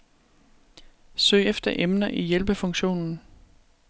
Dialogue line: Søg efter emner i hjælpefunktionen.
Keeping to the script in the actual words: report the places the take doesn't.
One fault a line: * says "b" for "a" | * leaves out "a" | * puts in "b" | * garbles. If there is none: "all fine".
all fine